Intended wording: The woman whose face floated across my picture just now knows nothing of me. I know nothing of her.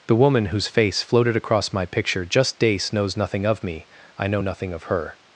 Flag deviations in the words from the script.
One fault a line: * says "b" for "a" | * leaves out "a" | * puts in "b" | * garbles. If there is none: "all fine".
* says "dace" for "now"